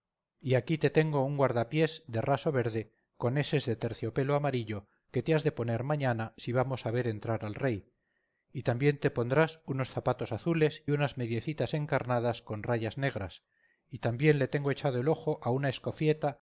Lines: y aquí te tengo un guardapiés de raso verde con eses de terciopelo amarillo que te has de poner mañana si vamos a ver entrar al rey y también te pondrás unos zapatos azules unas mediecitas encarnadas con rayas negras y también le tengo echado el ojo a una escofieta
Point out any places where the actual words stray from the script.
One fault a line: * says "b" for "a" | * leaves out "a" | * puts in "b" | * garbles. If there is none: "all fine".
all fine